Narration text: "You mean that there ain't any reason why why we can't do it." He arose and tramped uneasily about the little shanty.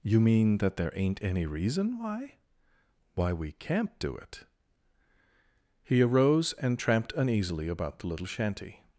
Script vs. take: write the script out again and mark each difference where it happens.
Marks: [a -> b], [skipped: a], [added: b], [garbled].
"You mean that there ain't any reason why why we can't do it." He arose and tramped uneasily about the little shanty.